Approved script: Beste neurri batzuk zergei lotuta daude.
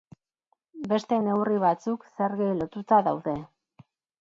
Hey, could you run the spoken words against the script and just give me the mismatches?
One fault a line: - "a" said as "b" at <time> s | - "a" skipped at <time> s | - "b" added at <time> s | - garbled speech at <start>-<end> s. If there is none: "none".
none